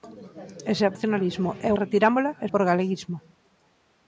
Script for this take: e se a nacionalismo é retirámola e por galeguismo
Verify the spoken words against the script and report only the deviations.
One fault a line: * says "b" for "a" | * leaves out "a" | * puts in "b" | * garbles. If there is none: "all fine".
all fine